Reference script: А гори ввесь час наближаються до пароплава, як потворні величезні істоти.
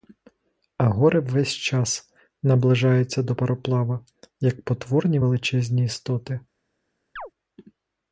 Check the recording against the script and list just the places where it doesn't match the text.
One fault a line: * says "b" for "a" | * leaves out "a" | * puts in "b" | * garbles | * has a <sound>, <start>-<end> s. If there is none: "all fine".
* has a chirp, 7.2-7.3 s